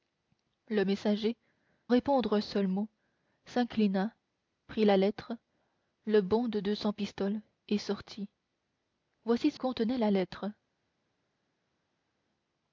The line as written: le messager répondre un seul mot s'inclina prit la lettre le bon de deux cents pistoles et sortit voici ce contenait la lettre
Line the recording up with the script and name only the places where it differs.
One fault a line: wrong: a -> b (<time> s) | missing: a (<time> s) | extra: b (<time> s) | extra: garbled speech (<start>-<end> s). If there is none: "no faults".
no faults